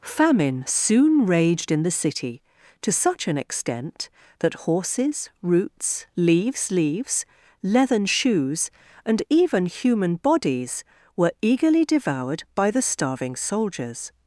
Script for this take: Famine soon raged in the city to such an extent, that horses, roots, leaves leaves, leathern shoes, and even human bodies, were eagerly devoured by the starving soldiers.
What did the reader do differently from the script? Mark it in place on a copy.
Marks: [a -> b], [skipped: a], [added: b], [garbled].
Famine soon raged in the city to such an extent, that horses, roots, leaves leaves, leathern shoes, and even human bodies, were eagerly devoured by the starving soldiers.